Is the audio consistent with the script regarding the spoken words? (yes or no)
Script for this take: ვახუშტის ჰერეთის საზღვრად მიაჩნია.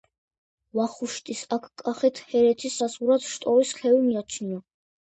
no